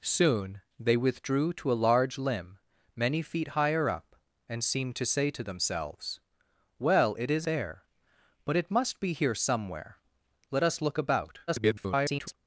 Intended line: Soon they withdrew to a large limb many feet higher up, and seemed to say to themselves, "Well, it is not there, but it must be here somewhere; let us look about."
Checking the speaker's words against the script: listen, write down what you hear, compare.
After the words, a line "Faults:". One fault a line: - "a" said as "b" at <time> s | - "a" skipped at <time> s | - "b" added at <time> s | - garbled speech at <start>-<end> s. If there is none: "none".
Soon they withdrew to a large limb many feet higher up, and seemed to say to themselves, "Well, it is there, but it must be here somewhere; let us look about." [garbled]
Faults:
- "not" skipped at 7.5 s
- garbled speech at 11.5-12.3 s